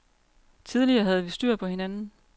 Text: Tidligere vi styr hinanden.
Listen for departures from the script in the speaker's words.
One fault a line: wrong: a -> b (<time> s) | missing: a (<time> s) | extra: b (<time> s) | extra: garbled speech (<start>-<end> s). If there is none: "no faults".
extra: havde (1.0 s)
extra: på (1.5 s)